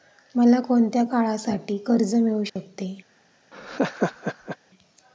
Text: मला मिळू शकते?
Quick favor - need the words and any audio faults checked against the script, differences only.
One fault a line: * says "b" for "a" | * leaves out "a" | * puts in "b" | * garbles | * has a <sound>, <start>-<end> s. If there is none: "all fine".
* puts in "कोणत्या काळासाठी कर्ज"
* has a dropout, 2.5-2.6 s
* has a laugh, 3.5-4.6 s